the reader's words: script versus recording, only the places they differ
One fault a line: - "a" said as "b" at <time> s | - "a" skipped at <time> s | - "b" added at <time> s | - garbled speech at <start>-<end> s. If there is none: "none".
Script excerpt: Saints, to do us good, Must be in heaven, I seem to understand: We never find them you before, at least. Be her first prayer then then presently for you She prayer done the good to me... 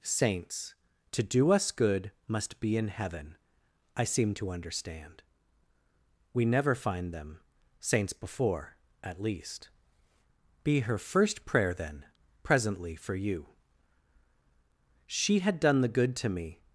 - "you" said as "saints" at 7.8 s
- "then" skipped at 12.1 s
- "prayer" said as "had" at 15.4 s